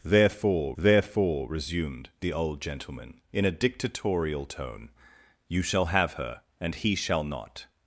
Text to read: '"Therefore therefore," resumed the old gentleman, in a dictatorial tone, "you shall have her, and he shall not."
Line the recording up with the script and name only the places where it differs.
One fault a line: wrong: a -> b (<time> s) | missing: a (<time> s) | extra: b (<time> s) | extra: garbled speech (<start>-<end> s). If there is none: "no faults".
no faults